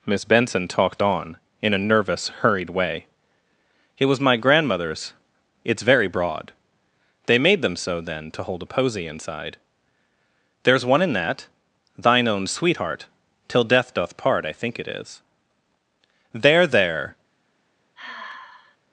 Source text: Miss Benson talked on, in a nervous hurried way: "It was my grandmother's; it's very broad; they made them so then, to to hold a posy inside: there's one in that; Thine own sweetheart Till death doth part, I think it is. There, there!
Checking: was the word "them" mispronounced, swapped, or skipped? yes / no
no